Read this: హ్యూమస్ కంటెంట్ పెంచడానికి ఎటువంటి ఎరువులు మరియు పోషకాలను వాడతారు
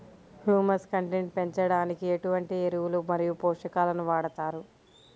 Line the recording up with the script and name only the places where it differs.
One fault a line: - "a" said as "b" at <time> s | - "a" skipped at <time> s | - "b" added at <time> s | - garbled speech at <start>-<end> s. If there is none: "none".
none